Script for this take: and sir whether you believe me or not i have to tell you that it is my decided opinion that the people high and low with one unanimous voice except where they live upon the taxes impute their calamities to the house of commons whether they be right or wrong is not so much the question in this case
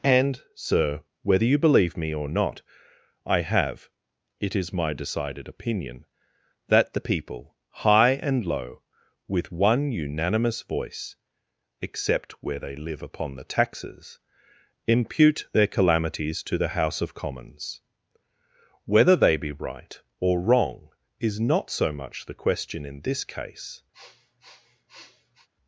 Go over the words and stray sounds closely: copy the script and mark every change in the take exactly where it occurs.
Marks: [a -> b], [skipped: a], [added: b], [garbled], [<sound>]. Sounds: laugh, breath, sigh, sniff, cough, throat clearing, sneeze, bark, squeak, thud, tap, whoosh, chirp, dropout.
and sir whether you believe me or not i have [skipped: to tell you that] it is my decided opinion that the people high and low with one unanimous voice except where they live upon the taxes impute their calamities to the house of commons whether they be right or wrong is not so much the question in this case [sniff]